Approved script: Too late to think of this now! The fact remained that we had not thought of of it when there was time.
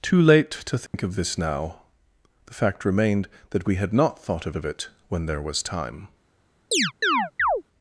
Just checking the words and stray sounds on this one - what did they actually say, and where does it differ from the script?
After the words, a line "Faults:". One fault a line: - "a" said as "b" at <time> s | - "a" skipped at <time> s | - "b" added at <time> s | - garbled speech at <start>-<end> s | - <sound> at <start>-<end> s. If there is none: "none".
Too late to think of this now! The fact remained that we had not thought of of it when there was time.
Faults:
- dropout at 0.9-0.9 s
- chirp at 6.7-7.6 s